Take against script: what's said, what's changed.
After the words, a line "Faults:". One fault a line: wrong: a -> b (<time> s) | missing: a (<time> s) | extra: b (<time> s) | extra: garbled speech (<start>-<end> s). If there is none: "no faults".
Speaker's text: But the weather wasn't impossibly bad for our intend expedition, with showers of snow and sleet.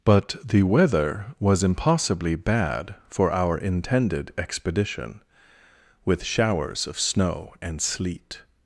But the weather was impossibly bad for our intended expedition, with showers of snow and sleet.
Faults:
wrong: wasn't -> was (1.4 s)
wrong: intend -> intended (3.6 s)